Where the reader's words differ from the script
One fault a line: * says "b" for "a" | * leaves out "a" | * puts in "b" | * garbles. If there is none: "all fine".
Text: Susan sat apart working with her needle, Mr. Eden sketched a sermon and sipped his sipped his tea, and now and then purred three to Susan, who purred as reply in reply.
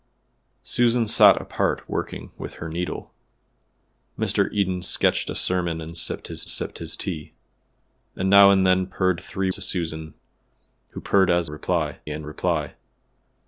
all fine